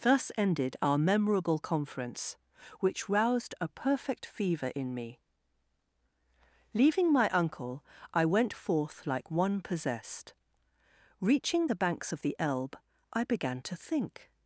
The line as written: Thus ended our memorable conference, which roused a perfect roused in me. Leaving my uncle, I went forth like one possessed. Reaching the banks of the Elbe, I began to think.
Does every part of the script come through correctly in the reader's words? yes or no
no